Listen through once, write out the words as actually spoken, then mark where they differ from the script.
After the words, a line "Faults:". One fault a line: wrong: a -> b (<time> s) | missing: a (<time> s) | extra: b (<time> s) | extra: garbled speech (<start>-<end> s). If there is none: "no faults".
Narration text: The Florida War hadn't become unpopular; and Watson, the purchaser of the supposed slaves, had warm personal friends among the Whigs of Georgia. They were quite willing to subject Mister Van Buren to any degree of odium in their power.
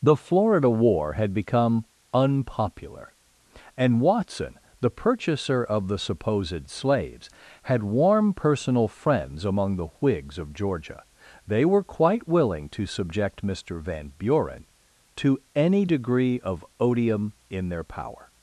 The Florida War had become unpopular; and Watson, the purchaser of the supposed slaves, had warm personal friends among the Whigs of Georgia. They were quite willing to subject Mister Van Buren to any degree of odium in their power.
Faults:
wrong: hadn't -> had (1.1 s)